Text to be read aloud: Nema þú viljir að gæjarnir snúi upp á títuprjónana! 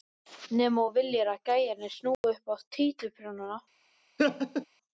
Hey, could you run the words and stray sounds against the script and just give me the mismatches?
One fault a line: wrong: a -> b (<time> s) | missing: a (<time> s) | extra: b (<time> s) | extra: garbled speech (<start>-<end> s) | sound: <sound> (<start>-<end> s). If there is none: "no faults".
sound: dropout (2.1-2.2 s)
sound: laugh (4.2-4.7 s)